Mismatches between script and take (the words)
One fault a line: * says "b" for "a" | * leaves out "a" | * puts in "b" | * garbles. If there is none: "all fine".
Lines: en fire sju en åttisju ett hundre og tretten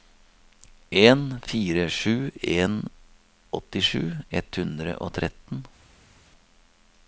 all fine